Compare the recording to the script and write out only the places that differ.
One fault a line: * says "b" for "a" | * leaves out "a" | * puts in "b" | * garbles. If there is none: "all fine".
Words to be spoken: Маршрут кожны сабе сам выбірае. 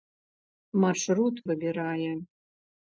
* leaves out "кожны сабе сам"